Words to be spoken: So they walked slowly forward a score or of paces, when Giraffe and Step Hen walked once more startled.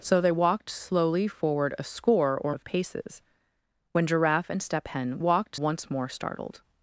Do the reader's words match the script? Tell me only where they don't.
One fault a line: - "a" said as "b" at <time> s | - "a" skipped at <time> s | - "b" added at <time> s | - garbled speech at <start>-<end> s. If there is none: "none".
none